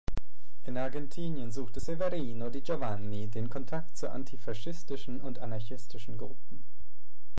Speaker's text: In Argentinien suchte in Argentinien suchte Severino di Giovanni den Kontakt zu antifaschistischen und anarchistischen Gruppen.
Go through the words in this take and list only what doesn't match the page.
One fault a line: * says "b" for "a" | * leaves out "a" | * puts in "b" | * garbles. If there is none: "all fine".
* leaves out "in Argentinien suchte"